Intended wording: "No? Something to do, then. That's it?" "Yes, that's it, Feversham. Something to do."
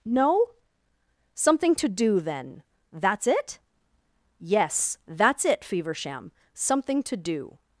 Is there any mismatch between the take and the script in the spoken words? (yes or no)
no